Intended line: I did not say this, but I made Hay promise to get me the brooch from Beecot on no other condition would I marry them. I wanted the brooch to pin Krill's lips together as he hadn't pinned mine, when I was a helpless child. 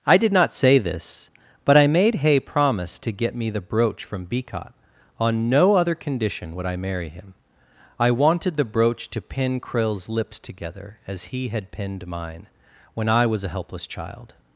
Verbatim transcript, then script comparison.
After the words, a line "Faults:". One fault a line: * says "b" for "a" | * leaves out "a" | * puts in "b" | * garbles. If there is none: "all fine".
I did not say this, but I made Hay promise to get me the brooch from Beecot on no other condition would I marry him. I wanted the brooch to pin Krill's lips together as he had pinned mine, when I was a helpless child.
Faults:
* says "him" for "them"
* says "had" for "hadn't"